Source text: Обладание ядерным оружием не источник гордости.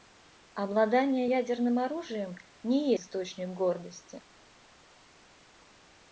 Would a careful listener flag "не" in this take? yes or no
no